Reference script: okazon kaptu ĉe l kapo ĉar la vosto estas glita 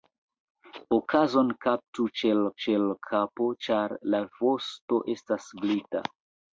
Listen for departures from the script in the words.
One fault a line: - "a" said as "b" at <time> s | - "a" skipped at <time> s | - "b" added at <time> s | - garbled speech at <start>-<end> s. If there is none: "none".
- "ĉe l" added at 2.6 s